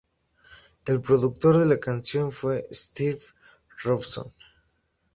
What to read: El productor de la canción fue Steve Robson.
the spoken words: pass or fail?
pass